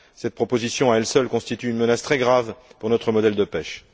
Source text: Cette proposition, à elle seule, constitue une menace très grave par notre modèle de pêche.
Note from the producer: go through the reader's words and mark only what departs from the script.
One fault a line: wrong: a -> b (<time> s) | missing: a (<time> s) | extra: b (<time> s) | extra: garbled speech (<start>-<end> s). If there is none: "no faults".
wrong: par -> pour (2.8 s)